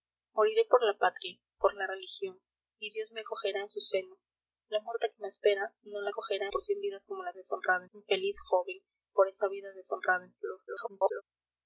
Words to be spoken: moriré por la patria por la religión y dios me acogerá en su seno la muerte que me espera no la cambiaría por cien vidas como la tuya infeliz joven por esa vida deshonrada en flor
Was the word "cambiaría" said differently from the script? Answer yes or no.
yes